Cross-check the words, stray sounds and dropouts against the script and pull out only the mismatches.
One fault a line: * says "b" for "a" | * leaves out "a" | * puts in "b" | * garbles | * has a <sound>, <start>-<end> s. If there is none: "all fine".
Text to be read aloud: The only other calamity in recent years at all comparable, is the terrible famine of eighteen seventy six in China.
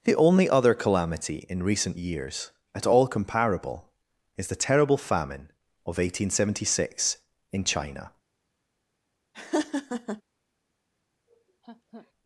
* has a laugh, 9.3-10.2 s
* has a laugh, 11.3-12.1 s